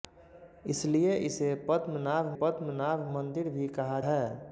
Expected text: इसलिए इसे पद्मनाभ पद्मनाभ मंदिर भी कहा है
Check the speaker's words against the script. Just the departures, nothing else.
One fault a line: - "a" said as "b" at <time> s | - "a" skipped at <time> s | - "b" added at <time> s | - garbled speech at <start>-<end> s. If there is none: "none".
none